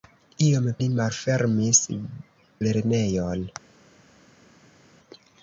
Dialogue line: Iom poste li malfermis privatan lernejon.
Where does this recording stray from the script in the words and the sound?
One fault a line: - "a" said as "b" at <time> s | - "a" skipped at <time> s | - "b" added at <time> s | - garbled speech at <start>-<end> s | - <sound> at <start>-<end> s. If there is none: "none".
- "poste" skipped at 0.7 s
- "privatan" skipped at 1.8 s